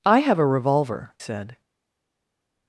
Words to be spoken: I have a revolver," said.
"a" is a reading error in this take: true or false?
false